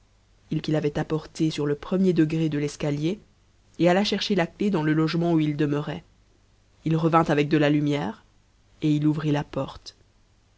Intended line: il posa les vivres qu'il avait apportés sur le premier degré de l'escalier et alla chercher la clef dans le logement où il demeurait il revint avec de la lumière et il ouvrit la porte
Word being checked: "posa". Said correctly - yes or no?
no